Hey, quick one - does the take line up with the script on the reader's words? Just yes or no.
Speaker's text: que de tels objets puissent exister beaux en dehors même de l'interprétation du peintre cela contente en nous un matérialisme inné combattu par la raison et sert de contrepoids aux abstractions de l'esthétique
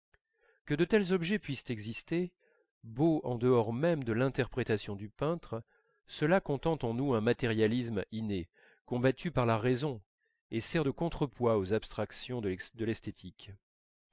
yes